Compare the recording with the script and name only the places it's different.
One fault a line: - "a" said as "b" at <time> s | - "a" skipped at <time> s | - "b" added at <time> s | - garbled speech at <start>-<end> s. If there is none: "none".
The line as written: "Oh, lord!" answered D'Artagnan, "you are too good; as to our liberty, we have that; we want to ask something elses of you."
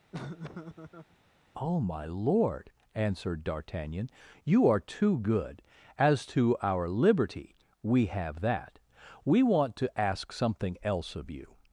- "my" added at 1.8 s
- "elses" said as "else" at 10.8 s